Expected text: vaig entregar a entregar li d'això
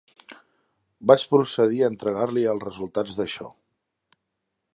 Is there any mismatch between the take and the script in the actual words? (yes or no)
yes